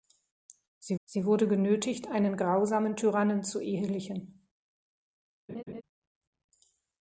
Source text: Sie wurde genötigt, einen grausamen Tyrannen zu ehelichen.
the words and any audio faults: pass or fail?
fail